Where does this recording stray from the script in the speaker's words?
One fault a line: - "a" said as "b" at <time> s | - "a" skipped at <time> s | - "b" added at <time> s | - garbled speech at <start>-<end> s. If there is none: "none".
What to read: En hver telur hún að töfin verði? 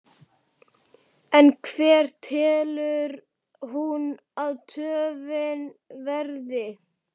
none